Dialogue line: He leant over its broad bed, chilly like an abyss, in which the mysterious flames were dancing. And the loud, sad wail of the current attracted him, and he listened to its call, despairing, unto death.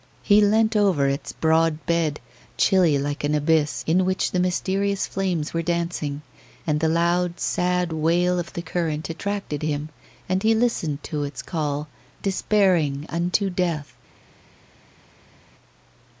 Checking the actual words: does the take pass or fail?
pass